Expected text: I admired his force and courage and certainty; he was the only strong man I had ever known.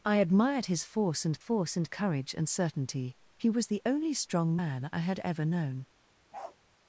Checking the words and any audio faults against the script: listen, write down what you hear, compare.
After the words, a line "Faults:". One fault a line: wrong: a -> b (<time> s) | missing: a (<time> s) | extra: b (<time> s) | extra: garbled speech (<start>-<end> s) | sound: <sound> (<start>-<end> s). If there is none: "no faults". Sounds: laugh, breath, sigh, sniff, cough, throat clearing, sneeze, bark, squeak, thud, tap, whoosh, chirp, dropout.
I admired his force and force and courage and certainty; he was the only strong man I had ever known.
Faults:
extra: force and (1.4 s)
sound: bark (6.3-6.6 s)